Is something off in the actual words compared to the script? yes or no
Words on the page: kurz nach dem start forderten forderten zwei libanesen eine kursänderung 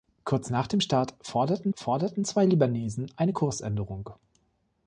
no